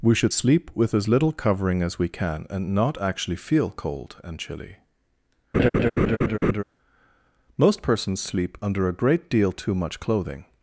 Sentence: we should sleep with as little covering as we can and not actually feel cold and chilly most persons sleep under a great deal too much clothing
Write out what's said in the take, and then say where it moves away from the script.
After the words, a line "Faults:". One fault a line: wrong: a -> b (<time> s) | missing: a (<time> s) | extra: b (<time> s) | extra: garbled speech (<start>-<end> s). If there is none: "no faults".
we should sleep with as little covering as we can and not actually feel cold and chilly most persons sleep under a great deal too much clothing
Faults:
no faults